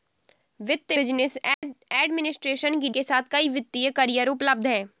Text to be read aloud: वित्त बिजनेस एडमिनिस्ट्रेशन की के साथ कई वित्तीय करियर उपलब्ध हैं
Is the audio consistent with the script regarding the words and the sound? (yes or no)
no